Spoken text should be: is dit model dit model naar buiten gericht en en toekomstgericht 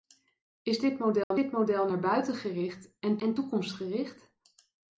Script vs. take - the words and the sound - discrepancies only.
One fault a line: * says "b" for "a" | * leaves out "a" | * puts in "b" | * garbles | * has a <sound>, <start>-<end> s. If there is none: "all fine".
* has a dropout, 1.2-1.3 s